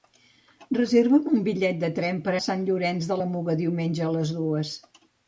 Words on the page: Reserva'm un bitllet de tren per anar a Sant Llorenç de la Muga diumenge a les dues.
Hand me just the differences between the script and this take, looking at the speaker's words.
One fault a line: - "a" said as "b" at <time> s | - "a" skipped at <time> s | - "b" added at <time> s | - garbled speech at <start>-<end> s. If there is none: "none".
- "anar" skipped at 2.3 s